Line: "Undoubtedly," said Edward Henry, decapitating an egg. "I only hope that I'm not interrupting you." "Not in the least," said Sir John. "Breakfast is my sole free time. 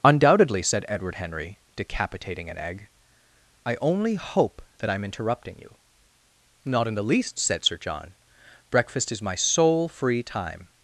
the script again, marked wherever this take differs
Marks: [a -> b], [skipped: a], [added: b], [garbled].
"Undoubtedly," said Edward Henry, decapitating an egg. "I only hope that I'm [skipped: not] interrupting you." "Not in the least," said Sir John. "Breakfast is my sole free time.